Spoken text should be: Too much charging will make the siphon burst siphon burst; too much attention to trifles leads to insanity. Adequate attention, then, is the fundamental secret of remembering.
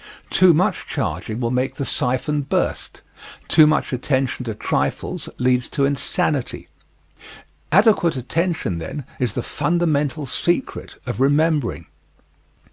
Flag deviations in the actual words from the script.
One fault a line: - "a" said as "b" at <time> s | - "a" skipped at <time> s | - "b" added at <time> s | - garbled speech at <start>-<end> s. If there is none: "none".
- "siphon burst" skipped at 3.0 s